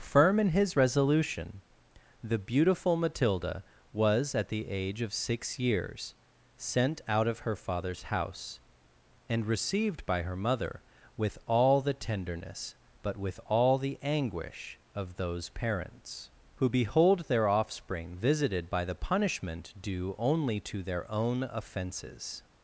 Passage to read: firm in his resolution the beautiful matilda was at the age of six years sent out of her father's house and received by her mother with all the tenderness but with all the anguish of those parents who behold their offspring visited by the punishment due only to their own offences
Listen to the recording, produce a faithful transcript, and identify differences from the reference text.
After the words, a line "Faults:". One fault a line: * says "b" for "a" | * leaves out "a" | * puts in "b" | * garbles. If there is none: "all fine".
firm in his resolution the beautiful matilda was at the age of six years sent out of her father's house and received by her mother with all the tenderness but with all the anguish of those parents who behold their offspring visited by the punishment due only to their own offences
Faults:
all fine